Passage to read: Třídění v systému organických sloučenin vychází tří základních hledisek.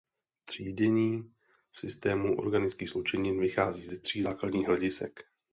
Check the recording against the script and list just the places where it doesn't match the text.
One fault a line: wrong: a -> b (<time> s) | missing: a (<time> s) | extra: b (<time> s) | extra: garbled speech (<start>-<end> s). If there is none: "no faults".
extra: ze (3.9 s)